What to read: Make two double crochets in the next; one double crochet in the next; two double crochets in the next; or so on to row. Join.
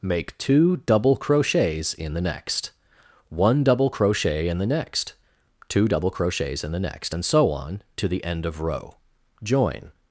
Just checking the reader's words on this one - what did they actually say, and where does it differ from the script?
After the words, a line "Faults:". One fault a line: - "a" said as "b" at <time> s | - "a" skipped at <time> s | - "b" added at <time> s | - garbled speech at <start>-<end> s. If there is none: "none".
Make two double crochets in the next; one double crochet in the next; two double crochets in the next; and so on to the end of row. Join.
Faults:
- "or" said as "and" at 7.1 s
- "the end of" added at 8.1 s